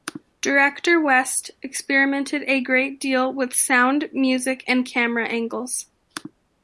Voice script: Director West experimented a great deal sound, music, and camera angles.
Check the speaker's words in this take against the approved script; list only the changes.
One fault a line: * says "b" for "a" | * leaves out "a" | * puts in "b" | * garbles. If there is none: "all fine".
* puts in "with"